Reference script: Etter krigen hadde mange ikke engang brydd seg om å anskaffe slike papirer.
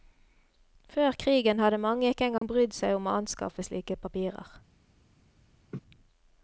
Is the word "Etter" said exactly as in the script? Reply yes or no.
no